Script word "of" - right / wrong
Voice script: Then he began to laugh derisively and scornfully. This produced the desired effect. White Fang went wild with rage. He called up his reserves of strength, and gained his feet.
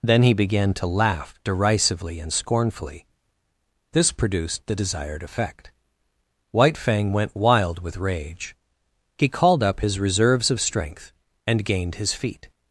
right